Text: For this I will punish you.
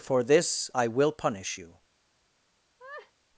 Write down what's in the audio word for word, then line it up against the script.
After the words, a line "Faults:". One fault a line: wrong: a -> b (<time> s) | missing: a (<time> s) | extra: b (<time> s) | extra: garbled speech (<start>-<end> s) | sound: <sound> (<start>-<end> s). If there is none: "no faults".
For this I will punish you.
Faults:
sound: laugh (2.8-3.1 s)